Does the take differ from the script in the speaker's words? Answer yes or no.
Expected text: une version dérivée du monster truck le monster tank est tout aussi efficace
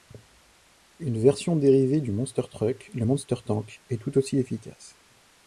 no